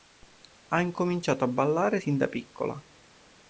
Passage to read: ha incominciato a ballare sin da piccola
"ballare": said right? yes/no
yes